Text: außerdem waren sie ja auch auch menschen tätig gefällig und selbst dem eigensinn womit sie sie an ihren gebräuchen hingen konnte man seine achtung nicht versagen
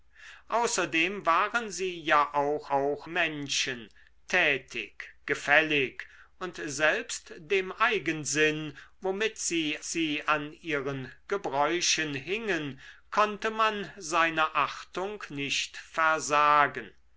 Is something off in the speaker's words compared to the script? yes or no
no